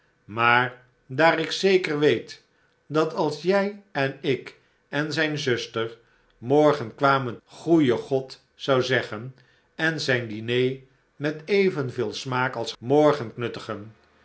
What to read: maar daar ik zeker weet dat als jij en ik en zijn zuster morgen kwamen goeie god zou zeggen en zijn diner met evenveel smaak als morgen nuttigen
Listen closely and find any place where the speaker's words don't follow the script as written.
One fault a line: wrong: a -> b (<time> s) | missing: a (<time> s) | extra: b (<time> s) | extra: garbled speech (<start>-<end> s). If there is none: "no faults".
no faults